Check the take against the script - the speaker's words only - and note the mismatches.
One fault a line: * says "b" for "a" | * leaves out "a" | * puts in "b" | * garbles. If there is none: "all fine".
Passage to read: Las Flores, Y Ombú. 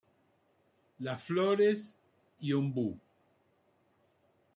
all fine